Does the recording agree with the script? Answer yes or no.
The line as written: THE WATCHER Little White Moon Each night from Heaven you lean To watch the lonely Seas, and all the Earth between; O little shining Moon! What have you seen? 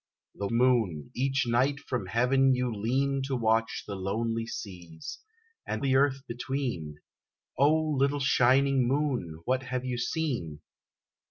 no